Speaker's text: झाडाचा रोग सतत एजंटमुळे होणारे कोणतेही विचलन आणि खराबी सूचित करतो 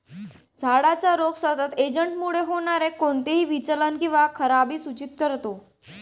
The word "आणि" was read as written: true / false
false